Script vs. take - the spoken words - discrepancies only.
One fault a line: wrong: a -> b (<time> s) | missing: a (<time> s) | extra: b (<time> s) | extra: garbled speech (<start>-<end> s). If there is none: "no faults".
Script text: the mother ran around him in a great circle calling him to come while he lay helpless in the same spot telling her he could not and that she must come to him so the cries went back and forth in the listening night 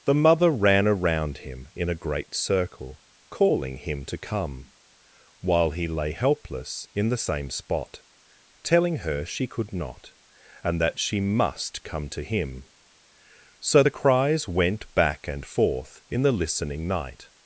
wrong: he -> she (9.2 s)